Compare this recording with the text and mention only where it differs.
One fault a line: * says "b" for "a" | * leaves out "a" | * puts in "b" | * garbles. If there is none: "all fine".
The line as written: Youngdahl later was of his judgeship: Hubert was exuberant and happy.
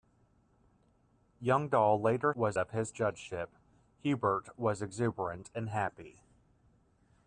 all fine